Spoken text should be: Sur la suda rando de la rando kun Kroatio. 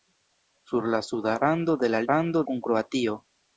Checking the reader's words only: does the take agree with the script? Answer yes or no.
yes